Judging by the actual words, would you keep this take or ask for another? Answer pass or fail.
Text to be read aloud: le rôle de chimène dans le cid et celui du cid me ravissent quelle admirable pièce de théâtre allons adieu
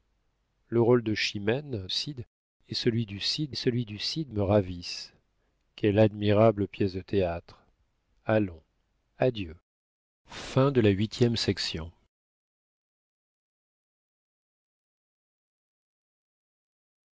fail